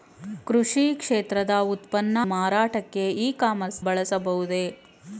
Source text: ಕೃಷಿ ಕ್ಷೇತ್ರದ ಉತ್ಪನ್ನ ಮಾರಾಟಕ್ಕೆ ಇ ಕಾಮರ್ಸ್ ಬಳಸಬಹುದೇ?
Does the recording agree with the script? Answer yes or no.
yes